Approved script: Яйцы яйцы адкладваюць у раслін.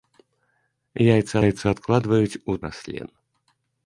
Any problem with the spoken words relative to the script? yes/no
no